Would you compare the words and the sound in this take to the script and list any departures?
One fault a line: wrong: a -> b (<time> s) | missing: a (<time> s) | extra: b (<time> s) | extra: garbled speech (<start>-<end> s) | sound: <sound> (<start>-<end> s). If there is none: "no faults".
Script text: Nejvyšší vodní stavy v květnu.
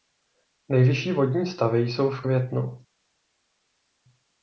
extra: jsou (1.8 s)